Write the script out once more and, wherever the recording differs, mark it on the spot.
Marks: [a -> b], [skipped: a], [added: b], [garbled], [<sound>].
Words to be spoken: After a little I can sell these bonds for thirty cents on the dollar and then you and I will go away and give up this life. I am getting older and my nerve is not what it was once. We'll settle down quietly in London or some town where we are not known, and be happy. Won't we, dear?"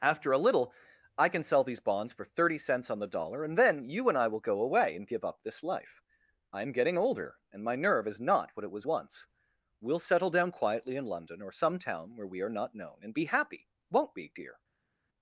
After a little I can sell these bonds for thirty cents on the dollar and then you and I will go away and give up this life. I am getting older and my nerve is not what it was once. We'll settle down quietly in London or some town where we are not known, and be happy. Won't we, dear?"